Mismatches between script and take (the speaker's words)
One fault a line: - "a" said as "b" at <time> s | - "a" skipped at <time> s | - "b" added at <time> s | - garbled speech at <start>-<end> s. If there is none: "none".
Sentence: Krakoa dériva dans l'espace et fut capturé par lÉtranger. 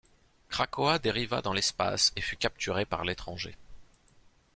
none